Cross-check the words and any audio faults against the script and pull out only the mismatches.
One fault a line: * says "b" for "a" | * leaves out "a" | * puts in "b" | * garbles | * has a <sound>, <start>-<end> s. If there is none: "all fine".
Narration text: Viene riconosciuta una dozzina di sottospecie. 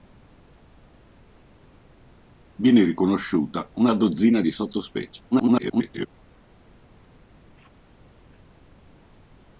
* garbles